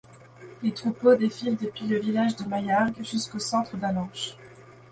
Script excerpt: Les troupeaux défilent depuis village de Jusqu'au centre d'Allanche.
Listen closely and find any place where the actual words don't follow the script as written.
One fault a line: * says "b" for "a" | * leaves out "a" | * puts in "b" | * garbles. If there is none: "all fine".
* puts in "le"
* puts in "Maillargues"